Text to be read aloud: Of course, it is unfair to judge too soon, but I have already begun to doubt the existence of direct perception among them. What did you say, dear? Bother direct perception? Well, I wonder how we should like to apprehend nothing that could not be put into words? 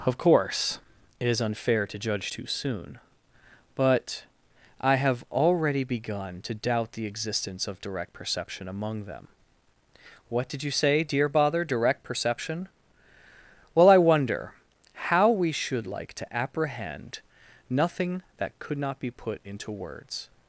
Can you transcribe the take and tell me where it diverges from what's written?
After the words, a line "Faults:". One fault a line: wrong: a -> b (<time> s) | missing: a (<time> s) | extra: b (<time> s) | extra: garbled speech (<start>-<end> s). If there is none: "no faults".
Of course, it is unfair to judge too soon, but I have already begun to doubt the existence of direct perception among them. What did you say, dear? Bother direct perception? Well, I wonder how we should like to apprehend nothing that could not be put into words?
Faults:
no faults